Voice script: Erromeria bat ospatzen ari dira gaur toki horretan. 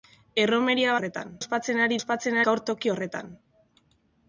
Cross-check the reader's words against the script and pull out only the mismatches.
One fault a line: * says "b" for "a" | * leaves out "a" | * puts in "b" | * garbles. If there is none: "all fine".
* says "horretan" for "bat"
* says "ospatzen" for "dira"